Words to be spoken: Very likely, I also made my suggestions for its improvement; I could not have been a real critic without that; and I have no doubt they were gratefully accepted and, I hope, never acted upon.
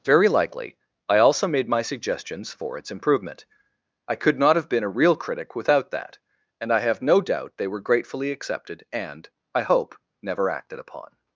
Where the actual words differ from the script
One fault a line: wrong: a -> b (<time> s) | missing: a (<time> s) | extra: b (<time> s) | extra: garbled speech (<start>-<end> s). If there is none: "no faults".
no faults